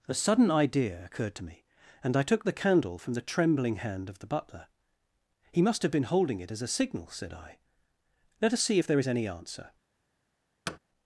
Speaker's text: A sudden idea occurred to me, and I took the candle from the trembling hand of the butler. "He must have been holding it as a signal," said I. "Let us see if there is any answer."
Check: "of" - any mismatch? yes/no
no